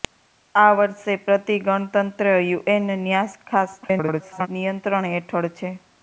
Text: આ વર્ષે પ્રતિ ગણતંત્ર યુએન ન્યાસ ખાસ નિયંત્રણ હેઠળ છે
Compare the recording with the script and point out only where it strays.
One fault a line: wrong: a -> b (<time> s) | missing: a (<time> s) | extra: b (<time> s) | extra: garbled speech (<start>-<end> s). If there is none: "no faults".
extra: garbled speech (3.8-4.5 s)